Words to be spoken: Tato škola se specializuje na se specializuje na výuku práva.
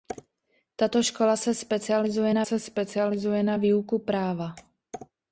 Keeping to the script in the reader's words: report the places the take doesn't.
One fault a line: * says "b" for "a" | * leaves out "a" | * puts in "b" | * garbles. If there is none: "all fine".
all fine